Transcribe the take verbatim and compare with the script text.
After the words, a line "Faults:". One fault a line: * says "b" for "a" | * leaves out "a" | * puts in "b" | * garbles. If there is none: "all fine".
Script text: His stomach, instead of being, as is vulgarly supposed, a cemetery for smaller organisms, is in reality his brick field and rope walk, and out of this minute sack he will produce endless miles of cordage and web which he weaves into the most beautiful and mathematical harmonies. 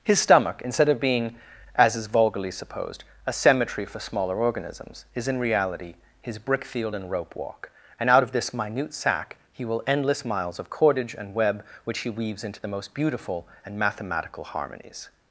His stomach, instead of being, as is vulgarly supposed, a cemetery for smaller organisms, is in reality his brick field and rope walk, and out of this minute sack he will endless miles of cordage and web which he weaves into the most beautiful and mathematical harmonies.
Faults:
* leaves out "produce"